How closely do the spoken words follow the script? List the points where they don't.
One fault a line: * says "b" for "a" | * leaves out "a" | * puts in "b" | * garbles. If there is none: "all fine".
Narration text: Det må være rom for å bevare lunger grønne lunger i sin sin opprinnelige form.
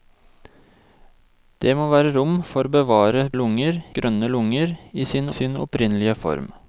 all fine